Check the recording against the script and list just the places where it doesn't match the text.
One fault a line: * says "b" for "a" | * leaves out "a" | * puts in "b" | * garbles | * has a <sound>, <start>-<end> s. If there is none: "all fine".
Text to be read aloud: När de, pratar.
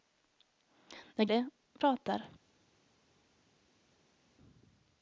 all fine